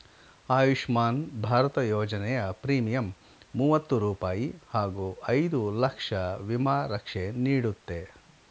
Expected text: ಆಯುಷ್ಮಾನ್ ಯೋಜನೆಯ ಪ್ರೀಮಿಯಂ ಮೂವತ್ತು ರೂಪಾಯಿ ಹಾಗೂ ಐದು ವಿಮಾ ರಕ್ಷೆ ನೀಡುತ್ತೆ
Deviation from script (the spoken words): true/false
true